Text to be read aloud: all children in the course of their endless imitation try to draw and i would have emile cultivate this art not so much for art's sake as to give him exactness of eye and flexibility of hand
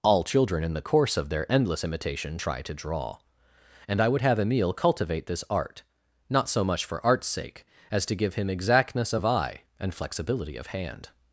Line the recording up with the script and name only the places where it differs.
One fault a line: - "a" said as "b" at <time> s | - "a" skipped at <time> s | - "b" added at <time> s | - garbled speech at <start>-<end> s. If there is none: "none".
none